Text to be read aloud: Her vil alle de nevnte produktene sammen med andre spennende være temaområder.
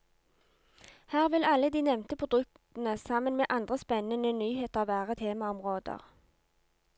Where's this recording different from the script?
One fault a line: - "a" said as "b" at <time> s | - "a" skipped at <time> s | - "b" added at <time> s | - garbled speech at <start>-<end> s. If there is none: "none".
- "nyheter" added at 4.3 s